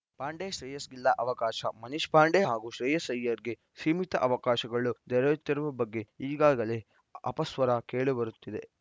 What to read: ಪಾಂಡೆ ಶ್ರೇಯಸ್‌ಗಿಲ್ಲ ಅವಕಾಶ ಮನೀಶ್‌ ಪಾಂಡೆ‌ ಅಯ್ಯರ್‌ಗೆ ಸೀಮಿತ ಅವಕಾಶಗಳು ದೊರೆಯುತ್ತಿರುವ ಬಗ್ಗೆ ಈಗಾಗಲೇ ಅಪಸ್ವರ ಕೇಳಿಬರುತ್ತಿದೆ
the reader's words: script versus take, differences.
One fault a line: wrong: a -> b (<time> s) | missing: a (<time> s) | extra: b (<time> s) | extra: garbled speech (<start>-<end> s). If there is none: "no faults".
extra: ಹಾಗೂ ಶ್ರೇಯಸ್ (2.4 s)